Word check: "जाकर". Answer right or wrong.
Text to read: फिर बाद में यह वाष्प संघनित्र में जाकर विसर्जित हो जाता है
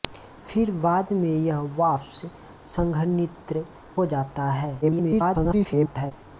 wrong